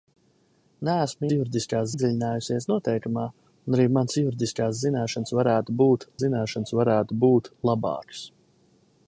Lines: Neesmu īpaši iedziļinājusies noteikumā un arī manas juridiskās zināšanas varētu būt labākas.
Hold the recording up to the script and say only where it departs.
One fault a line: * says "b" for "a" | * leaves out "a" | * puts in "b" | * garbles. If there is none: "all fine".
* says "juridiskās" for "īpaši"
* puts in "zināšanas varētu būt"